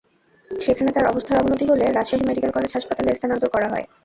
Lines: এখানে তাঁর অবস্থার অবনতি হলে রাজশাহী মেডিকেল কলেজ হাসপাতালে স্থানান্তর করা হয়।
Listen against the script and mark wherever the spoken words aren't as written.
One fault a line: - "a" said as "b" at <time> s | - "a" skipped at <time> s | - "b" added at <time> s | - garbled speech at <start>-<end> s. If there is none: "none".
- "এখানে" said as "সেখানে" at 0.5 s